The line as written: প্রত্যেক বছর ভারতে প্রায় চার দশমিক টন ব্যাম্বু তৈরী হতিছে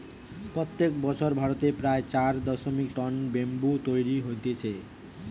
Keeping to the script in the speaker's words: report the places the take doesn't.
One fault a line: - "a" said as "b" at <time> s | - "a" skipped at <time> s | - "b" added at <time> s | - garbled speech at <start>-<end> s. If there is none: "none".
none